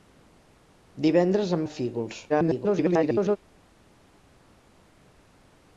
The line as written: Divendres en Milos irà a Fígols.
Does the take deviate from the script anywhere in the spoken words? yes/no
yes